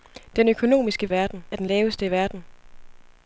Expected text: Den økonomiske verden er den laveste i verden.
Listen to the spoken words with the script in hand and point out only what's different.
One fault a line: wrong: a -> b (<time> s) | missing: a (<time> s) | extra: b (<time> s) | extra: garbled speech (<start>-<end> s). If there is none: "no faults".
no faults